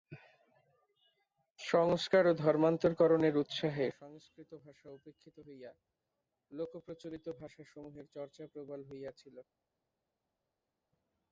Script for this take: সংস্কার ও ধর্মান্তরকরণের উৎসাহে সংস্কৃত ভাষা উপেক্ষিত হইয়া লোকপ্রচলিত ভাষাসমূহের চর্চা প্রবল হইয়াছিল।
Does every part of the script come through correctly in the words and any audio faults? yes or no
yes